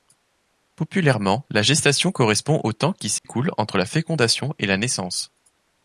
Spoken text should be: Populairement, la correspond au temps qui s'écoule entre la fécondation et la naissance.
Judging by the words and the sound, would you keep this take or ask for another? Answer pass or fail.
fail